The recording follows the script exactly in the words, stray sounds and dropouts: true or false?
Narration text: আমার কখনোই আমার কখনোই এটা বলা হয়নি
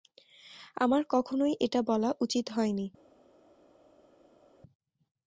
false